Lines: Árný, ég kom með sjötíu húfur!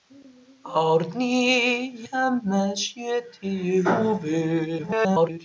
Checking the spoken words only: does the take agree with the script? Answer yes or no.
no